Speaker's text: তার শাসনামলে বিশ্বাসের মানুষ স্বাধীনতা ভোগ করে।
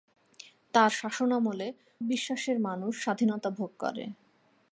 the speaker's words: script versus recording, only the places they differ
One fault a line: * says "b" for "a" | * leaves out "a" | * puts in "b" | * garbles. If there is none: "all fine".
all fine